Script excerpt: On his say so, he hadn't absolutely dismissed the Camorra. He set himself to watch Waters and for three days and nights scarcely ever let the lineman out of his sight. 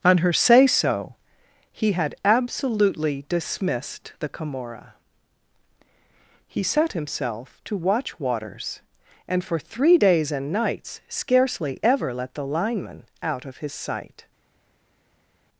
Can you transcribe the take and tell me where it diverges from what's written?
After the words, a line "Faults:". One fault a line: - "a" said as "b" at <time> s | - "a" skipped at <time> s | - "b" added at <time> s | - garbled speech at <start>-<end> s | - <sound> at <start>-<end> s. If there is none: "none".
On her say so, he had absolutely dismissed the Camorra. He set himself to watch Waters and for three days and nights scarcely ever let the lineman out of his sight.
Faults:
- "his" said as "her" at 0.2 s
- "hadn't" said as "had" at 1.9 s